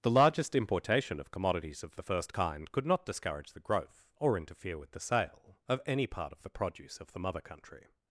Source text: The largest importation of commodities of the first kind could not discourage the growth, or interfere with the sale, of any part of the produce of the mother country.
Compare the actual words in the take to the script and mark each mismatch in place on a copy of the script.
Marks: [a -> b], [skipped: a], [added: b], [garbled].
The largest importation of commodities of the first kind could not discourage the growth, or interfere with the sale, of any part of the produce of the mother country.